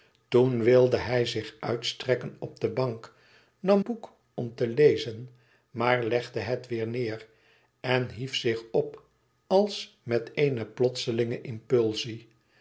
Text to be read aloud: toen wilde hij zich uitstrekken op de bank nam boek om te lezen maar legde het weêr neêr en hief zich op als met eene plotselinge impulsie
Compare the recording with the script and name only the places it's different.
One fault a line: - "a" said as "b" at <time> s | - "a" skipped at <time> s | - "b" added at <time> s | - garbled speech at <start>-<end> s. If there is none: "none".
none